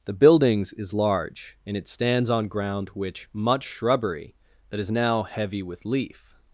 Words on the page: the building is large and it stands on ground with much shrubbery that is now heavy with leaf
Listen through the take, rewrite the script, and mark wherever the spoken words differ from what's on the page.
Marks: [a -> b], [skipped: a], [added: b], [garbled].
the [building -> buildings] is large and it stands on ground [with -> which] much shrubbery that is now heavy with leaf